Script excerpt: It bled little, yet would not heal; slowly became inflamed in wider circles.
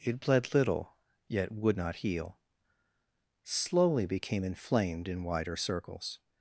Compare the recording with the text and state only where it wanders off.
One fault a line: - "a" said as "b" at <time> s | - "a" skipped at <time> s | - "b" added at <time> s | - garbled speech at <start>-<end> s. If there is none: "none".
none